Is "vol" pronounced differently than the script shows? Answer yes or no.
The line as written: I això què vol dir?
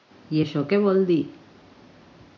no